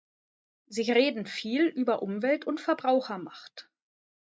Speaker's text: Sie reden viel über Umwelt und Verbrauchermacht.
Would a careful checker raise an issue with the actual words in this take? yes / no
no